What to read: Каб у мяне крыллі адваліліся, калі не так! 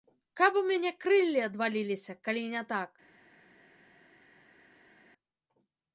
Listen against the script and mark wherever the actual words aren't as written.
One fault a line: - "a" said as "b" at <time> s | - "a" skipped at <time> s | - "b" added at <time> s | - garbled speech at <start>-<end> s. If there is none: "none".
none